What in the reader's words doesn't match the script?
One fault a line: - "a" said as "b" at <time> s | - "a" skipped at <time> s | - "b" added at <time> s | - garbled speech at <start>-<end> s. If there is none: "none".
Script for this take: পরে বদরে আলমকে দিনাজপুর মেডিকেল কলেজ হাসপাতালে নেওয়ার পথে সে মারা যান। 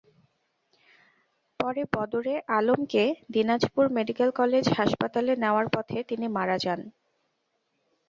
- "সে" said as "তিনি" at 6.1 s